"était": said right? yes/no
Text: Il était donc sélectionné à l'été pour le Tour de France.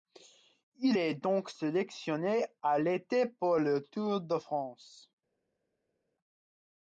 no